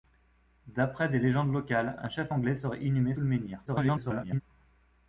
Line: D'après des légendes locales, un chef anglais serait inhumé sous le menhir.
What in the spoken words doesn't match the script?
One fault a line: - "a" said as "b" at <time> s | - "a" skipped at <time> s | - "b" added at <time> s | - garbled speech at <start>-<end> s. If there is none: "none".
- "sous" skipped at 3.1 s
- garbled speech at 3.7-4.4 s